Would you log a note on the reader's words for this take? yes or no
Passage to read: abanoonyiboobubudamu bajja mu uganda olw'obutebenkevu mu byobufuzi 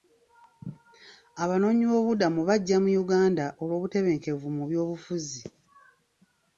no